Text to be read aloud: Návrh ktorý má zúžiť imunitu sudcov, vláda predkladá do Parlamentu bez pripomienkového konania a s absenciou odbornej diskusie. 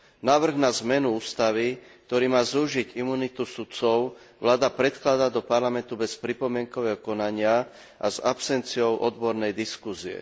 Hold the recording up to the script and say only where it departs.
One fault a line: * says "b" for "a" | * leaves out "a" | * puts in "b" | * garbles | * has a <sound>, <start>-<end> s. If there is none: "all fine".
* puts in "na zmenu ústavy"